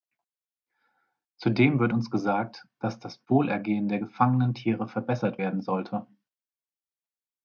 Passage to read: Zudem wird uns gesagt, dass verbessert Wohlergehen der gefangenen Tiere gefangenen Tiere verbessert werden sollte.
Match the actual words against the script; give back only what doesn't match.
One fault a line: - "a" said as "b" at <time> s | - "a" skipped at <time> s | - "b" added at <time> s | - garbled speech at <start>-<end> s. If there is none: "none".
- "verbessert" said as "das" at 3.0 s
- "gefangenen Tiere" skipped at 4.9 s